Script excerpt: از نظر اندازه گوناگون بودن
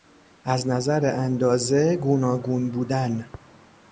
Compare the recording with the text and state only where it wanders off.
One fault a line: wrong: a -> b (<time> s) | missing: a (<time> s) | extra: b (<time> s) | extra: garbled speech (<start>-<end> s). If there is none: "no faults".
no faults